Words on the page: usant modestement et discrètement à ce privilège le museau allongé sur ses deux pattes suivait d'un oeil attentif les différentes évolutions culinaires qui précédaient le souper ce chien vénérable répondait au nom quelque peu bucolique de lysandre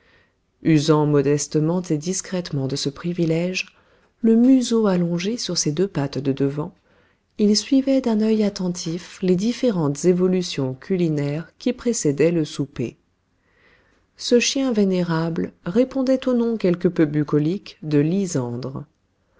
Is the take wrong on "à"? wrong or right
wrong